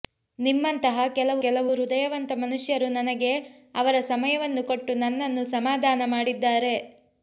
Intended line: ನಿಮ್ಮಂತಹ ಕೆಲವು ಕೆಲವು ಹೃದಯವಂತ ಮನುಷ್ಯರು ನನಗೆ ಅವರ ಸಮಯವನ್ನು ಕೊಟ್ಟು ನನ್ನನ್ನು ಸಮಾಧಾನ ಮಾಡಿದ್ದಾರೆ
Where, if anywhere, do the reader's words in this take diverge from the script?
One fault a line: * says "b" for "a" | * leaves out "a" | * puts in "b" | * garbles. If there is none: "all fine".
all fine